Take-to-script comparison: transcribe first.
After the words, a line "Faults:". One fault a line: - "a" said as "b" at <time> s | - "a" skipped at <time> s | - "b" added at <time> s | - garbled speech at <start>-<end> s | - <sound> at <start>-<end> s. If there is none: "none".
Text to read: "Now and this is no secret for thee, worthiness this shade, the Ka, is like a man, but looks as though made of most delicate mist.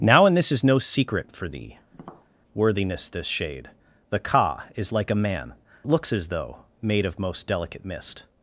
"Now and this is no secret for thee, worthiness this shade, the Ka, is like a man, looks as though made of most delicate mist.
Faults:
- tap at 1.9-2.3 s
- "but" skipped at 5.5 s